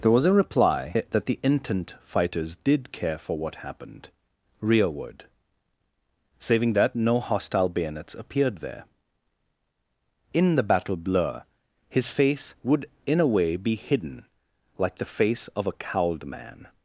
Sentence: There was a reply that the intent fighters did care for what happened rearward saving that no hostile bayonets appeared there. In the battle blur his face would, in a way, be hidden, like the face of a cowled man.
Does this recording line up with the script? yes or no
yes